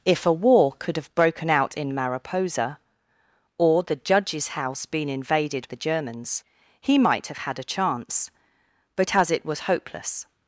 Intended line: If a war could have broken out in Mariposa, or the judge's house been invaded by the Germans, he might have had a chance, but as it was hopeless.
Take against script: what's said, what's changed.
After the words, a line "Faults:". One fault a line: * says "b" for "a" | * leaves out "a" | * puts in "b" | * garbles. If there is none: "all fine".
If a war could have broken out in Mariposa, or the judge's house been invaded the Germans, he might have had a chance, but as it was hopeless.
Faults:
* leaves out "by"